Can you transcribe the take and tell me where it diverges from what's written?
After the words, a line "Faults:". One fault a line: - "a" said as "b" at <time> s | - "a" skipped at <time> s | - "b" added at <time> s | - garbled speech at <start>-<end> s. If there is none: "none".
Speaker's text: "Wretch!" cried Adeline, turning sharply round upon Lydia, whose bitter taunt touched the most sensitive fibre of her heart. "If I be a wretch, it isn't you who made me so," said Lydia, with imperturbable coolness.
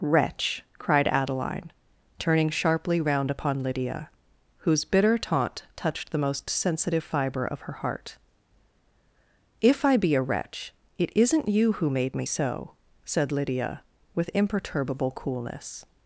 "Wretch!" cried Adeline, turning sharply round upon Lydia, whose bitter taunt touched the most sensitive fibre of her heart. "If I be a wretch, it isn't you who made me so," said Lydia, with imperturbable coolness.
Faults:
none